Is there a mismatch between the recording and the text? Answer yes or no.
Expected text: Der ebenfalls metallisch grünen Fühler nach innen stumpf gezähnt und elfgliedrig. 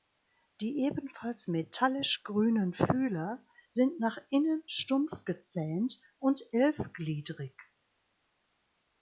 yes